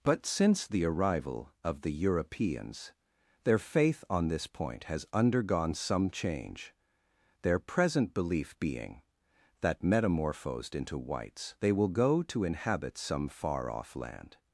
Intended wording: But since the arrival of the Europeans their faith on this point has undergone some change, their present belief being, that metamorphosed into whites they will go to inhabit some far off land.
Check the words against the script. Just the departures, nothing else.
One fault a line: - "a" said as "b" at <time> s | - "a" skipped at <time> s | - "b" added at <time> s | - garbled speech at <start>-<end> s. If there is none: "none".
none